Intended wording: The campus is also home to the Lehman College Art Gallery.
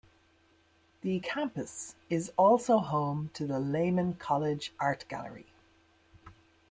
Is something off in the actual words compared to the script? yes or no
no